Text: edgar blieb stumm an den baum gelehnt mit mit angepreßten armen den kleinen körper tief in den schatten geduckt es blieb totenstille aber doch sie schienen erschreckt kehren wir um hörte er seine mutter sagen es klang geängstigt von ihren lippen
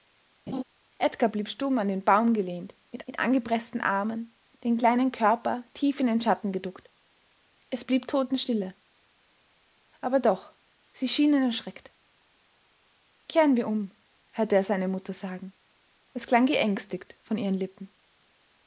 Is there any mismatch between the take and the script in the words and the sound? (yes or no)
yes